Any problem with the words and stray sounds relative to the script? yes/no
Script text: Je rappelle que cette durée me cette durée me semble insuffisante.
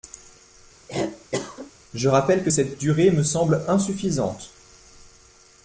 yes